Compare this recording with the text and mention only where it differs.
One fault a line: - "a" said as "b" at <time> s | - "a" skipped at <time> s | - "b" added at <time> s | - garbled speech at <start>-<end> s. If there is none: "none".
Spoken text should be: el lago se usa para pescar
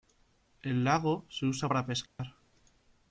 none